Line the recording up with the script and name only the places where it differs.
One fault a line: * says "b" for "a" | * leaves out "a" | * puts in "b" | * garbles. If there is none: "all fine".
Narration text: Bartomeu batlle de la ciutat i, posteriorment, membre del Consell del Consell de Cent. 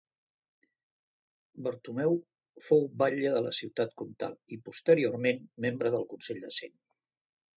* puts in "fou"
* puts in "comtal"
* leaves out "del Consell"